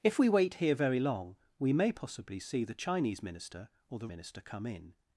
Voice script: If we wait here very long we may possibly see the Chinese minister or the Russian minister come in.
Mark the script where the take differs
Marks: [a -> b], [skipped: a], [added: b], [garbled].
If we wait here very long we may possibly see the Chinese minister or the [skipped: Russian] minister come in.